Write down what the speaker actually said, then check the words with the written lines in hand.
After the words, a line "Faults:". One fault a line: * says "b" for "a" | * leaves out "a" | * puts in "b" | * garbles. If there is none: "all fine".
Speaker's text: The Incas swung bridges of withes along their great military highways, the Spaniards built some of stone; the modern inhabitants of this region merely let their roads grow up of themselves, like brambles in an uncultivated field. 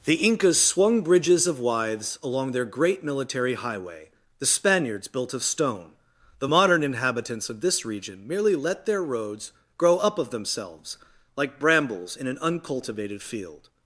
The Incas swung bridges of withes along their great military highway, the Spaniards built of stone; the modern inhabitants of this region merely let their roads grow up of themselves, like brambles in an uncultivated field.
Faults:
* says "highway" for "highways"
* leaves out "some"